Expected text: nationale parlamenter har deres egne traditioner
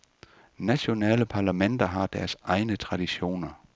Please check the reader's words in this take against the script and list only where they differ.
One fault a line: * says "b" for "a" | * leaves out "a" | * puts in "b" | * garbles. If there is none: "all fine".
all fine